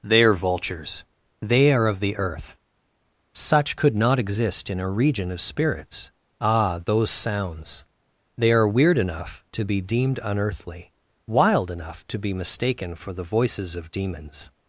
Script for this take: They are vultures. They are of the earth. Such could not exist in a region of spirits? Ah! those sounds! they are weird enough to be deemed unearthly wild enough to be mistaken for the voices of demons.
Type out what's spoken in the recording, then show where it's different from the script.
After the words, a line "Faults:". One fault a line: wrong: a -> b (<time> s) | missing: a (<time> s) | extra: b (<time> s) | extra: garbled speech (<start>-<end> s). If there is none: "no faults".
They are vultures. They are of the earth. Such could not exist in a region of spirits? Ah! those sounds! they are weird enough to be deemed unearthly wild enough to be mistaken for the voices of demons.
Faults:
no faults